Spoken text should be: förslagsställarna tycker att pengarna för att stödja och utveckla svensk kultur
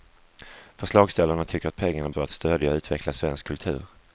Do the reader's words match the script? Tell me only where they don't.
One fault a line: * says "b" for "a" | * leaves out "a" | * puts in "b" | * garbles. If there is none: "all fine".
all fine